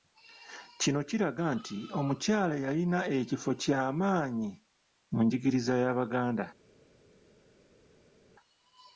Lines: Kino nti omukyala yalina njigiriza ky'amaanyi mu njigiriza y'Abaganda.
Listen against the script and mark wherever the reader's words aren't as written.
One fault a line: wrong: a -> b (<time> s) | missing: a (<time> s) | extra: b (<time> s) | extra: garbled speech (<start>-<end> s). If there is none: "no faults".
extra: kiraga (1.1 s)
wrong: njigiriza -> ekifo (3.2 s)